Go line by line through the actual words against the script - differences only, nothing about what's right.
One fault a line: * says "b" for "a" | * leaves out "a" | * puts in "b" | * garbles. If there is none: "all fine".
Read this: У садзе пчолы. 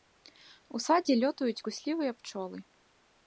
* puts in "лётаюць куслівыя"